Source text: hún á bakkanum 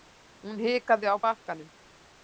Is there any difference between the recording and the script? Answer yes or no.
yes